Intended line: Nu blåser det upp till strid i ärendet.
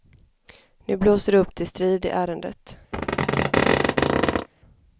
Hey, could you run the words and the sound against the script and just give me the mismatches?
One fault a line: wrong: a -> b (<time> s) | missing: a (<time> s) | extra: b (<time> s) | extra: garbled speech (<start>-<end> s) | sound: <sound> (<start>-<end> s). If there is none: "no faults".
sound: squeak (2.9-4.5 s)